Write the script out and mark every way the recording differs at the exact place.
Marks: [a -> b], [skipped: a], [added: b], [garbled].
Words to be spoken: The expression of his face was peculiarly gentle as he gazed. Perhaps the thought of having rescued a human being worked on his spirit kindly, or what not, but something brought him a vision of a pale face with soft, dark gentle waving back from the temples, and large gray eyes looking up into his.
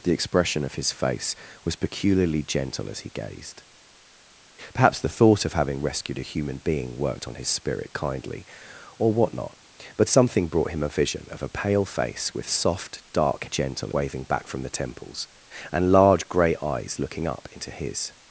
The expression of his face was peculiarly gentle as he gazed. Perhaps the thought of having rescued a human being worked on his spirit kindly, or what not, but something brought him a vision of a pale face with soft, dark gentle waving back from the temples, and large gray eyes looking up into his.